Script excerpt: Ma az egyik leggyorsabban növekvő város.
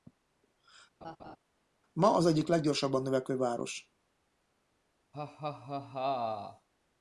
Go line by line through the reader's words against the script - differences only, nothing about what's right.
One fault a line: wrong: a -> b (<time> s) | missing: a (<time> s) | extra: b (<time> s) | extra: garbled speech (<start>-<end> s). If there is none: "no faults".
no faults